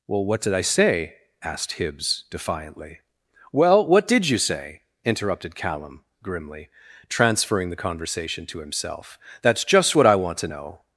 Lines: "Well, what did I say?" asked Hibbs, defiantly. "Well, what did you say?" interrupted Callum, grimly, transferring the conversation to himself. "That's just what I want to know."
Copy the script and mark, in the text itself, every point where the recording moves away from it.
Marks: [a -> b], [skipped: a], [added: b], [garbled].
"Well, what did I say?" asked Hibbs, defiantly. "Well, what did you say?" interrupted Callum, grimly, transferring the conversation to himself. "That's just what I want to know."